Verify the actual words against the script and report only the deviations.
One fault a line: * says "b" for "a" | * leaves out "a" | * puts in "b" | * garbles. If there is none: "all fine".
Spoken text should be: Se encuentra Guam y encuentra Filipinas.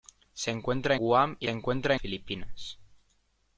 all fine